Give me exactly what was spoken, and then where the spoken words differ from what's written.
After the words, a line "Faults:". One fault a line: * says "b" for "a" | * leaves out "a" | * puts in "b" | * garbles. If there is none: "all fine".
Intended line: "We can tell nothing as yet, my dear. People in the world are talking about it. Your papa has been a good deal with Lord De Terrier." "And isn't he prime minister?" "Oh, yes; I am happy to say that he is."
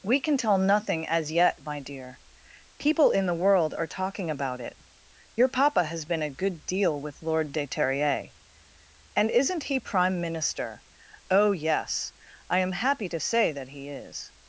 "We can tell nothing as yet, my dear. People in the world are talking about it. Your papa has been a good deal with Lord De Terrier." "And isn't he prime minister?" "Oh, yes; I am happy to say that he is."
Faults:
all fine